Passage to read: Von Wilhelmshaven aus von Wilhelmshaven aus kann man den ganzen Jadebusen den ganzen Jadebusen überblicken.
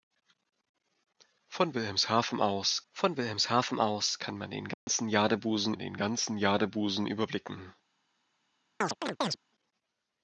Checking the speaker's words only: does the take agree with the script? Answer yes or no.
yes